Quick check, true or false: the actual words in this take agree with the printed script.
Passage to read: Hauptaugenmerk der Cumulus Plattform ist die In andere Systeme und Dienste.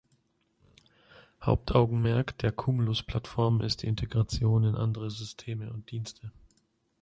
false